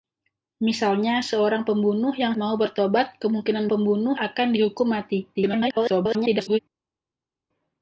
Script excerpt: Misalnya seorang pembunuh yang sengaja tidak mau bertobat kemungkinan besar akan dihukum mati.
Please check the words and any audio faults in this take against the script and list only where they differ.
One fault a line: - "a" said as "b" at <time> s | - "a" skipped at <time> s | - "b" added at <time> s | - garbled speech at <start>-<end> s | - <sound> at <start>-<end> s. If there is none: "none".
- "sengaja tidak" skipped at 2.3 s
- "besar" said as "pembunuh" at 3.7 s
- garbled speech at 5.3-6.6 s